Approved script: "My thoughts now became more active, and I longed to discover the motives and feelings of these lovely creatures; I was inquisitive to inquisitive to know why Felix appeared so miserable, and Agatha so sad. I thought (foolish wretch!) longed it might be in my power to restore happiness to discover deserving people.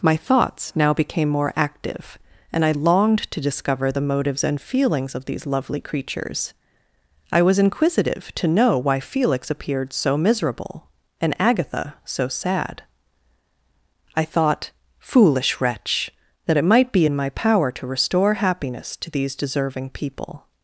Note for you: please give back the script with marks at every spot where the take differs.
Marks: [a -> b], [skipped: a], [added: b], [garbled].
"My thoughts now became more active, and I longed to discover the motives and feelings of these lovely creatures; I was inquisitive to [skipped: inquisitive to] know why Felix appeared so miserable, and Agatha so sad. I thought (foolish wretch!) [longed -> that] it might be in my power to restore happiness to [discover -> these] deserving people.